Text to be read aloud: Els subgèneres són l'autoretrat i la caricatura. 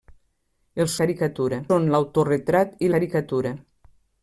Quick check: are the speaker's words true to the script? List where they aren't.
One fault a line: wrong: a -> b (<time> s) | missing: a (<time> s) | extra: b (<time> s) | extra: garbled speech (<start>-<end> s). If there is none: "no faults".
wrong: subgèneres -> caricatura (1.0 s)
missing: la (2.9 s)